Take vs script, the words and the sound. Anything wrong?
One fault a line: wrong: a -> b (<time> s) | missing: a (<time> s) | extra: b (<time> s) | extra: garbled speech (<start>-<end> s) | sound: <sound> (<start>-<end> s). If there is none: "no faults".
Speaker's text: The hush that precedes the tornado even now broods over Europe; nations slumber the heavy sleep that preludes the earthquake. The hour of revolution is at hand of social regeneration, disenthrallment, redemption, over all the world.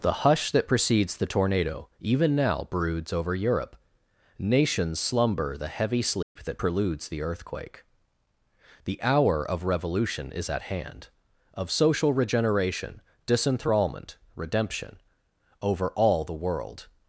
sound: dropout (6.2-6.4 s)